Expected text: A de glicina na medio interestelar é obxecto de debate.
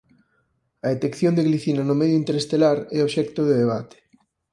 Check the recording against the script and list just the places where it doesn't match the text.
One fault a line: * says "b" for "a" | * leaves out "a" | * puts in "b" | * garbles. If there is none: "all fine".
* puts in "detección"
* says "no" for "na"